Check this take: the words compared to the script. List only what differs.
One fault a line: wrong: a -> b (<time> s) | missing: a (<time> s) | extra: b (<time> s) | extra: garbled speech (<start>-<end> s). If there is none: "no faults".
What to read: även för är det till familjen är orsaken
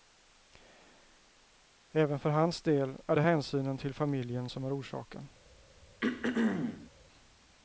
extra: hans del (2.3 s)
extra: hänsynen (3.2 s)
extra: som (4.5 s)